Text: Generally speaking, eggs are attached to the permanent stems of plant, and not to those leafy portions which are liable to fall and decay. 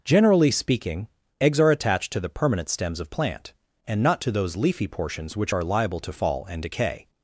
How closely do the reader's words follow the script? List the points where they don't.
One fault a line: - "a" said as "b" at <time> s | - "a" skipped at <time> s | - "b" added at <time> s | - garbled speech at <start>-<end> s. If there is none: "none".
none